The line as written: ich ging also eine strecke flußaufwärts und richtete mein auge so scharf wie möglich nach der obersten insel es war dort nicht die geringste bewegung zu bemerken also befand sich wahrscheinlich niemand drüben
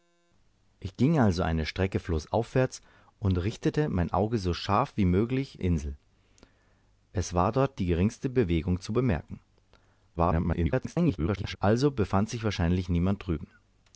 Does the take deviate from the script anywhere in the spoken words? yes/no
yes